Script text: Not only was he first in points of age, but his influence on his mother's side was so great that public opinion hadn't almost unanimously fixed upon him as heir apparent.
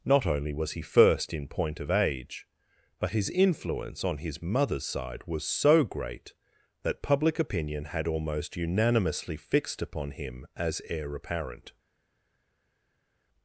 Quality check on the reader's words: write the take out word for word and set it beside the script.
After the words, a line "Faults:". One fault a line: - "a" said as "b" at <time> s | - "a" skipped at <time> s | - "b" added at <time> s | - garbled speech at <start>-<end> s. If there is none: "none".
Not only was he first in point of age, but his influence on his mother's side was so great that public opinion had almost unanimously fixed upon him as heir apparent.
Faults:
- "points" said as "point" at 1.5 s
- "hadn't" said as "had" at 7.9 s